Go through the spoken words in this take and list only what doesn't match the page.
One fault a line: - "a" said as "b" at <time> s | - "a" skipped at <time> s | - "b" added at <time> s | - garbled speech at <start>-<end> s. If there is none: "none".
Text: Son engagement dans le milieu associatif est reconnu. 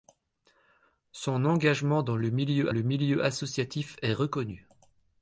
- "le milieu" added at 2.7 s